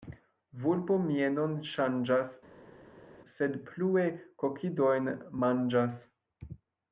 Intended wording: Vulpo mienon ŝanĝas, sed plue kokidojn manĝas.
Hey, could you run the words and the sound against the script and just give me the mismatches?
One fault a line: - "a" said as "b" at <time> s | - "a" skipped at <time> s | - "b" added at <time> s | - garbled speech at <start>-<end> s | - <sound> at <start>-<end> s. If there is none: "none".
none